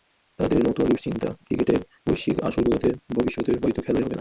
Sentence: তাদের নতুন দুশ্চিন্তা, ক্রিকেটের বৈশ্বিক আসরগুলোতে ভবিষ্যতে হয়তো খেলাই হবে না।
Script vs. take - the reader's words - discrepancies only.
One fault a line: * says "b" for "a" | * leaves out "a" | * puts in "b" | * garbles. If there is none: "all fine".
all fine